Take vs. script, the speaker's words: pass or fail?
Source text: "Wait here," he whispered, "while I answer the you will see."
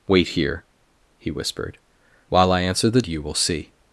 pass